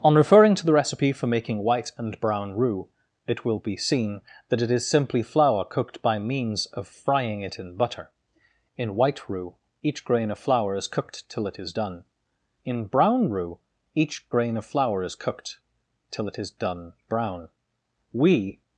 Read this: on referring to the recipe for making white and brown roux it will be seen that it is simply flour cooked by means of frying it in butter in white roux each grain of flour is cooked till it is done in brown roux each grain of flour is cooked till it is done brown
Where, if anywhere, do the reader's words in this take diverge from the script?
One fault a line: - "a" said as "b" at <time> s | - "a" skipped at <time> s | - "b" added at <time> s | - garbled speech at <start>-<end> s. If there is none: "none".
- "we" added at 18.1 s